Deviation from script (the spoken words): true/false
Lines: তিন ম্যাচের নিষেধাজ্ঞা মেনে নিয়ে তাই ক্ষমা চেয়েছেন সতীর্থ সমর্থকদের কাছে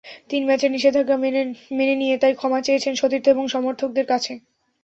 true